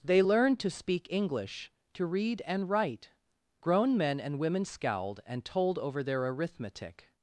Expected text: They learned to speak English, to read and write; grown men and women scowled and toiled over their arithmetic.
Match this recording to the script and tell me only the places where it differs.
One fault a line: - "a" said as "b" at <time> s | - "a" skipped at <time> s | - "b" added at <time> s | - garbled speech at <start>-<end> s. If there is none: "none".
- "toiled" said as "told" at 5.4 s